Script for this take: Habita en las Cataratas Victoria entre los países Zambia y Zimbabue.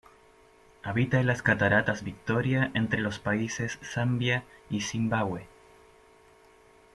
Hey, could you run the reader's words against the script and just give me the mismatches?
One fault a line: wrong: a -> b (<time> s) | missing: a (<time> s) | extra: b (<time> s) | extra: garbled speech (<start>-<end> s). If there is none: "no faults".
no faults